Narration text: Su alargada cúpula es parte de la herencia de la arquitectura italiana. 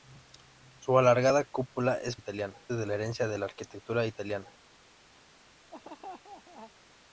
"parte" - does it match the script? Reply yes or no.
no